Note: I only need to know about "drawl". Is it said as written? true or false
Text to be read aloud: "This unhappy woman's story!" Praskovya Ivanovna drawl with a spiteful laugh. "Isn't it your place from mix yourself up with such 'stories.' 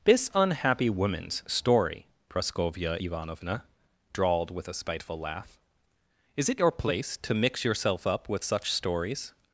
false